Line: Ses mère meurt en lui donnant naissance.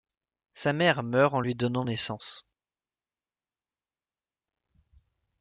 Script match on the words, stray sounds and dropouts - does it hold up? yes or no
no